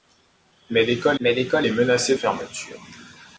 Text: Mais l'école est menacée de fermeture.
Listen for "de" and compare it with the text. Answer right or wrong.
wrong